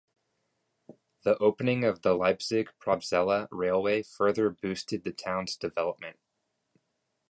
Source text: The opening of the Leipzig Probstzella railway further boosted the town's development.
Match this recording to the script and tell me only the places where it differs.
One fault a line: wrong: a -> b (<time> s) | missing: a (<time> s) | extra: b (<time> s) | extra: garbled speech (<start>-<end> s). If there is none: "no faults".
no faults